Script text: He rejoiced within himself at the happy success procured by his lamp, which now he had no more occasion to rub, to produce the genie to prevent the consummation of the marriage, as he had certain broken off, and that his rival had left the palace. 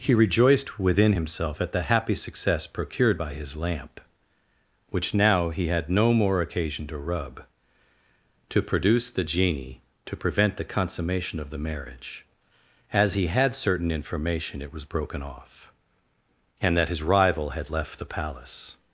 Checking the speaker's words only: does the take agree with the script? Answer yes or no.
no